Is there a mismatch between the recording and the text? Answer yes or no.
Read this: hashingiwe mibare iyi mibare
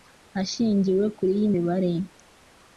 yes